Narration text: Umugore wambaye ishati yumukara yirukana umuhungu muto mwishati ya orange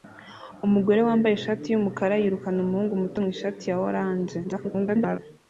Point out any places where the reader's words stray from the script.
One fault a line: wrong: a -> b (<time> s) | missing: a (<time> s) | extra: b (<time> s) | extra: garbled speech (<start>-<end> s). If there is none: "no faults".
extra: garbled speech (4.4-5.2 s)